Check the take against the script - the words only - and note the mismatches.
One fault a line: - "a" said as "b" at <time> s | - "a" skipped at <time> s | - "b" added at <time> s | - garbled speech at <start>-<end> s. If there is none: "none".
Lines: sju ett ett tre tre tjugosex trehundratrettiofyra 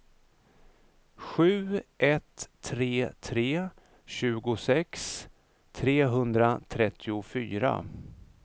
- "ett" skipped at 2.5 s